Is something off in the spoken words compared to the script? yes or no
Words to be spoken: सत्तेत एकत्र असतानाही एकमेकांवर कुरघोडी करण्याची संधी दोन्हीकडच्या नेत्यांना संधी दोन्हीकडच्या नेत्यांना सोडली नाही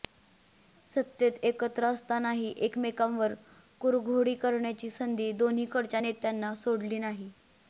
yes